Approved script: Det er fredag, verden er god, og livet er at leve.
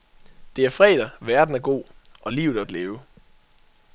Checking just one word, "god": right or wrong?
right